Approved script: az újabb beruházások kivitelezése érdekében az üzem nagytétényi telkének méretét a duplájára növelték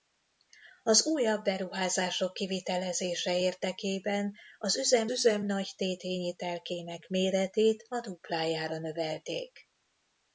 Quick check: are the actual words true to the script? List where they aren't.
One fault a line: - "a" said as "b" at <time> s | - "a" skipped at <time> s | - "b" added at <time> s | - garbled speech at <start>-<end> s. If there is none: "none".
- "üzem" added at 5.1 s